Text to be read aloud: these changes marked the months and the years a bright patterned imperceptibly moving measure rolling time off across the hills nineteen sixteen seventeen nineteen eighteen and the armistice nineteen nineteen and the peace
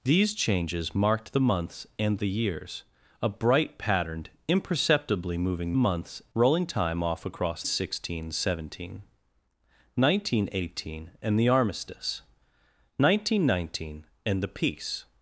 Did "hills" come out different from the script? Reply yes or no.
yes